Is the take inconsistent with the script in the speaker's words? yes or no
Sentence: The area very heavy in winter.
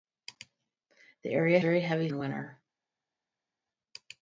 no